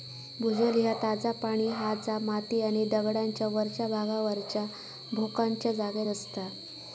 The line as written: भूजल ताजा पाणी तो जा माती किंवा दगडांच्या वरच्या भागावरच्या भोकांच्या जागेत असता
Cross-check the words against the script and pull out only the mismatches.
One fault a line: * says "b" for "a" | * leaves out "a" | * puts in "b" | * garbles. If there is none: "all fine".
* puts in "ह्या"
* says "हा" for "तो"
* says "आणि" for "किंवा"